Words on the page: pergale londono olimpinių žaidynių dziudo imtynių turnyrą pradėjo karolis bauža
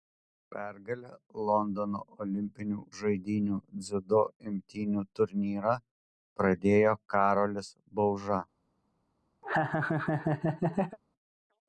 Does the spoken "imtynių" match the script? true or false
true